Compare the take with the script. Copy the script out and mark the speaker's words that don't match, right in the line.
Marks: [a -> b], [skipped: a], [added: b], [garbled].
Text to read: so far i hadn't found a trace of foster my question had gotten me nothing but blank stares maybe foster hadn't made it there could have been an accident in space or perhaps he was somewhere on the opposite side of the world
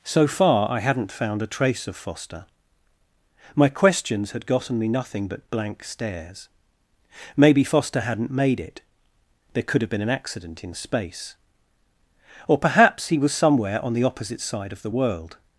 so far i hadn't found a trace of foster my [question -> questions] had gotten me nothing but blank stares maybe foster hadn't made it there could have been an accident in space or perhaps he was somewhere on the opposite side of the world